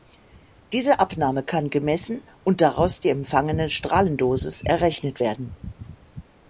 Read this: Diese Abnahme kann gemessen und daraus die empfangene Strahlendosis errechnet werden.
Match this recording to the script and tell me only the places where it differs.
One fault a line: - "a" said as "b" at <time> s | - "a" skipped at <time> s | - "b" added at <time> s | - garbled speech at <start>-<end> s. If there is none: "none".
none